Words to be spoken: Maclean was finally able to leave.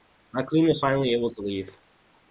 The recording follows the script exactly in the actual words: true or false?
true